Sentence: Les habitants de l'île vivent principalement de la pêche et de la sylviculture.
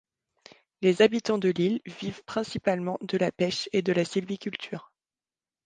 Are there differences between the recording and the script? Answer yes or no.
no